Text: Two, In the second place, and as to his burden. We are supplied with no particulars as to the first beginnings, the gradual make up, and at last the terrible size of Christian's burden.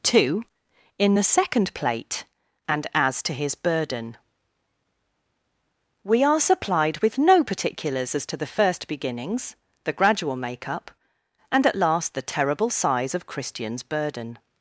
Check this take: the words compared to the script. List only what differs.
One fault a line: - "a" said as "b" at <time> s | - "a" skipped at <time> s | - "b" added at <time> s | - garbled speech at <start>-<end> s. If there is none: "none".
- "place" said as "plate" at 1.7 s